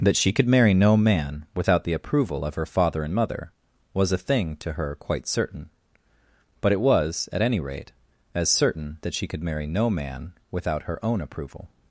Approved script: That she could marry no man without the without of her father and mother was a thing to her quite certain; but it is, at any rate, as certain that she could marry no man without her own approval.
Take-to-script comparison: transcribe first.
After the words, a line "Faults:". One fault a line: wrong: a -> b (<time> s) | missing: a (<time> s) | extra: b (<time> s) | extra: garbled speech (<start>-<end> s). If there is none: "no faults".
That she could marry no man without the approval of her father and mother was a thing to her quite certain; but it was, at any rate, as certain that she could marry no man without her own approval.
Faults:
wrong: without -> approval (1.9 s)
wrong: is -> was (6.8 s)